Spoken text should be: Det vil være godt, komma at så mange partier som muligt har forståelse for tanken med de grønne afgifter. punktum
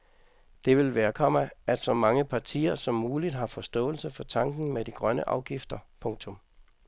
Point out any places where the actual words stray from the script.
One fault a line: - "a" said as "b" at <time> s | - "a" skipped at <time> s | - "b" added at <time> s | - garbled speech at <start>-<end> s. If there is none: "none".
- "godt" skipped at 1.1 s